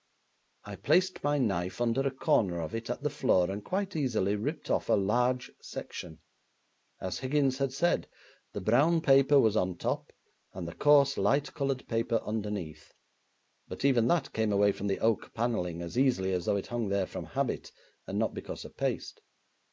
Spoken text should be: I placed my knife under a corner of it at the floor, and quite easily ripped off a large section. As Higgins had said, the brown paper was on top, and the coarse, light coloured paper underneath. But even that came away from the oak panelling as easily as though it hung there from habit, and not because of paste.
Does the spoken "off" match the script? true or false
true